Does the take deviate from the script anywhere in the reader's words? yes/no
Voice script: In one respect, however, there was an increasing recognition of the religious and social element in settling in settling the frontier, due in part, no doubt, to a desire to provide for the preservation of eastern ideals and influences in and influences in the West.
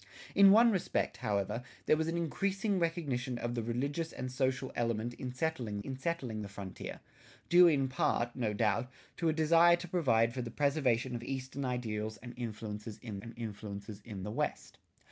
no